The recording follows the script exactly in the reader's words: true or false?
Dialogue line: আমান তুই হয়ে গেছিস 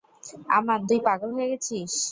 false